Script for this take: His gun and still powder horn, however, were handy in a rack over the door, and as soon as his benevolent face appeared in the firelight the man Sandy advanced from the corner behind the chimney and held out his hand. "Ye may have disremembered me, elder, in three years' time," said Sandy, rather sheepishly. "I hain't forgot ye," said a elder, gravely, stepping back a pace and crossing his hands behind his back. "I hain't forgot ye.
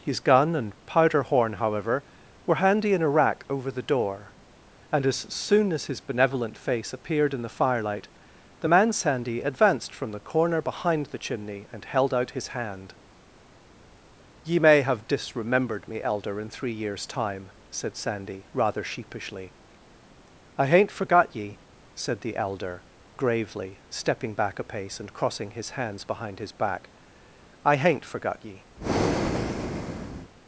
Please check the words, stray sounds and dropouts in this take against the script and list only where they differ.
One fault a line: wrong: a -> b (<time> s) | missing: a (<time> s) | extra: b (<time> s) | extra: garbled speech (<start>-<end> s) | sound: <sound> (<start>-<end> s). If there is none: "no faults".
missing: still (0.7 s)
wrong: a -> the (22.2 s)
sound: breath (28.8-30.3 s)